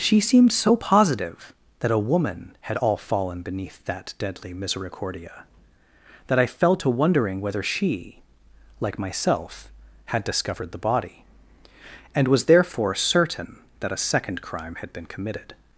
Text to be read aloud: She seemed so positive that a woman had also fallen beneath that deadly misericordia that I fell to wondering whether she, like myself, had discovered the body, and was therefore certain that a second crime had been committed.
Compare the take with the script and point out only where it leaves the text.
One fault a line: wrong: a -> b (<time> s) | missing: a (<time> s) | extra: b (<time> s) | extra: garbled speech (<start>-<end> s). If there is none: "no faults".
wrong: also -> all (2.7 s)